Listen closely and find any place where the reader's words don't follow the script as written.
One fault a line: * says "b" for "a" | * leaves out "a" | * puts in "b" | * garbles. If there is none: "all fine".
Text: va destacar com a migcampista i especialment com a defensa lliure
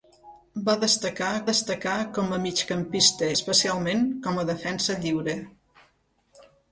* puts in "destacar"
* leaves out "i"